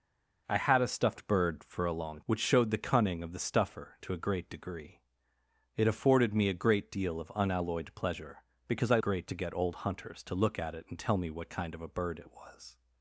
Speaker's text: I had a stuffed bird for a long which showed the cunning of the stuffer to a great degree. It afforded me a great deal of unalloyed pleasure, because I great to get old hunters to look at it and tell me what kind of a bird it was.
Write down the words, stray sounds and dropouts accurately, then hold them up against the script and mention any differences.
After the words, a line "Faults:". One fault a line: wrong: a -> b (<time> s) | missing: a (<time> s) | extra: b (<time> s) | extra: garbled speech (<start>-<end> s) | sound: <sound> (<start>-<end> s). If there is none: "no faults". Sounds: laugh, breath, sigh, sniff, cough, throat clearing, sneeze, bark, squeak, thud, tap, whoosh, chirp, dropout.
I had a stuffed bird for a long which showed the cunning of the stuffer to a great degree. It afforded me a great deal of unalloyed pleasure, because I great to get old hunters to look at it and tell me what kind of a bird it was.
Faults:
no faults